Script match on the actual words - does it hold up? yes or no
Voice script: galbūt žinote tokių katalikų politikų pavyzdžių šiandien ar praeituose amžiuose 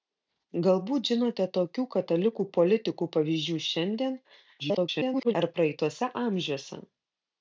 no